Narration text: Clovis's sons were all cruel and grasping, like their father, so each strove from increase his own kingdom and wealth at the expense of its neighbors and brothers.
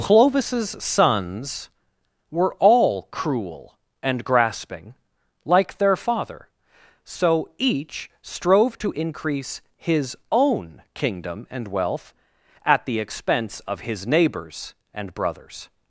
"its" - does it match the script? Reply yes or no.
no